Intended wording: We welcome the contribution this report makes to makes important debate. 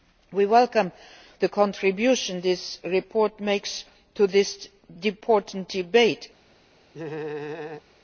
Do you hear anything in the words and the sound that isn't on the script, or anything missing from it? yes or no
yes